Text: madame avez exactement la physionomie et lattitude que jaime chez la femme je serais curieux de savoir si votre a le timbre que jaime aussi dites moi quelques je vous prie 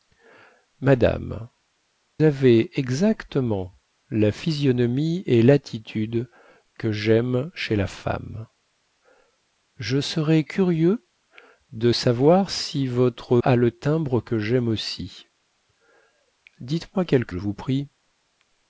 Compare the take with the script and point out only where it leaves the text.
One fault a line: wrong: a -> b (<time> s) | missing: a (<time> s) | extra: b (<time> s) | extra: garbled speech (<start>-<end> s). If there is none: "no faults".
no faults